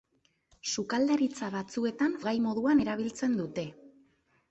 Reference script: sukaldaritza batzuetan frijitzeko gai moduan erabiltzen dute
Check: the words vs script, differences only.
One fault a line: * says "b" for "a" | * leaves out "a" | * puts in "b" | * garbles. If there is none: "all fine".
* leaves out "frijitzeko"